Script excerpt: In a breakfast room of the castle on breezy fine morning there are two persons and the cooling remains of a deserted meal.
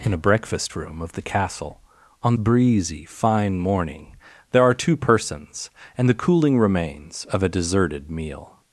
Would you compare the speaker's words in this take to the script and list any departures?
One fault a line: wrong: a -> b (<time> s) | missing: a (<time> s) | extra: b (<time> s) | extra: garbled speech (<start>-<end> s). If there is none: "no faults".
no faults